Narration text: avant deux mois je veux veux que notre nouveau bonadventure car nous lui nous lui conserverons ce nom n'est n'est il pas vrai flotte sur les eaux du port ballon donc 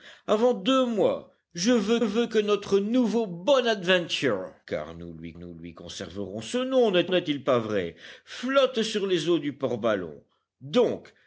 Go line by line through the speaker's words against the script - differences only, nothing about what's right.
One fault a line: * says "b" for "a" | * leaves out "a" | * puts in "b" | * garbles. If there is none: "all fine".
all fine